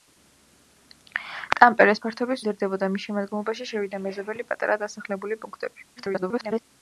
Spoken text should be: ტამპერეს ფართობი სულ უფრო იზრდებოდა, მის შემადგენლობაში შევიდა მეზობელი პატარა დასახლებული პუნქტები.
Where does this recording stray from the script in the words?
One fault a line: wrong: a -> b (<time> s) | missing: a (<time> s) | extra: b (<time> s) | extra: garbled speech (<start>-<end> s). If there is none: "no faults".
missing: სულ უფრო (2.4 s)
extra: garbled speech (6.0-6.6 s)